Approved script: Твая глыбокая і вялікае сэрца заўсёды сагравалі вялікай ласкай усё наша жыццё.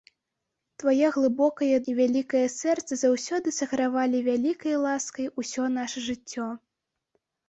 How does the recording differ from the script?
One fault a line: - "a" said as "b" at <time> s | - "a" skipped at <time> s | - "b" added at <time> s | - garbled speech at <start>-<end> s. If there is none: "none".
none